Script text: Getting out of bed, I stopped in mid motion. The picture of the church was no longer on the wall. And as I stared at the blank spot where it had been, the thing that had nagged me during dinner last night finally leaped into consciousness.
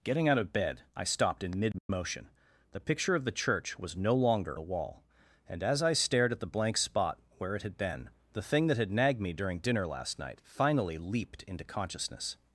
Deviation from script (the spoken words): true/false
true